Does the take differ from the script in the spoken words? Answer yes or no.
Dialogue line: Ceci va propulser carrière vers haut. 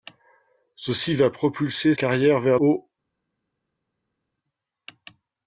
no